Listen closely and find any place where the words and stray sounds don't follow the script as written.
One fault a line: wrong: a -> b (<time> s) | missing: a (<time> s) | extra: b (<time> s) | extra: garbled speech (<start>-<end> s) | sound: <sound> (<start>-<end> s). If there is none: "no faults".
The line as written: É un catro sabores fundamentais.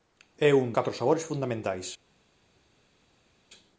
no faults